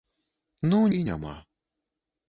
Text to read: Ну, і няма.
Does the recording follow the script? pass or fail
pass